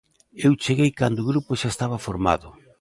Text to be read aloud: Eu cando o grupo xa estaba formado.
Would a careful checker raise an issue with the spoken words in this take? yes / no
yes